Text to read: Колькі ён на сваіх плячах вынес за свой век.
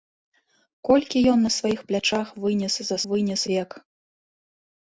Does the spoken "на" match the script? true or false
true